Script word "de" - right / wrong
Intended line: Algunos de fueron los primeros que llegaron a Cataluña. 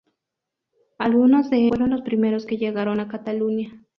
right